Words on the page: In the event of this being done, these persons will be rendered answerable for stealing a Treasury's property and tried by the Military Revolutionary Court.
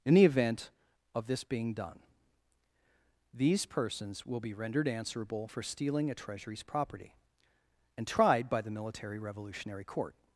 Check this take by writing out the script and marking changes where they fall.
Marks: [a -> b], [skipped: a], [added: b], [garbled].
In the event of this being done, these persons will be rendered answerable for stealing a Treasury's property and tried by the Military Revolutionary Court.